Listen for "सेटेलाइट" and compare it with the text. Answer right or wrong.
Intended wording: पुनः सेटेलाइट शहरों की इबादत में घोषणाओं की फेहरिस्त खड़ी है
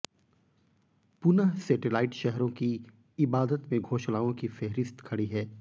right